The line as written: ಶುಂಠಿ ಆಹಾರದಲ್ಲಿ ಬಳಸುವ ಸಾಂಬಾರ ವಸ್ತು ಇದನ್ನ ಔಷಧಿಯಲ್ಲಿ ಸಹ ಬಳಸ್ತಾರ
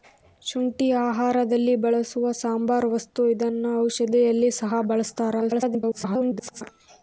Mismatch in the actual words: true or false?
true